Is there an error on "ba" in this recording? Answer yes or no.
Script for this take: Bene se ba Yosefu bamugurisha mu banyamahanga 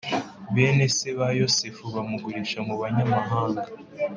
no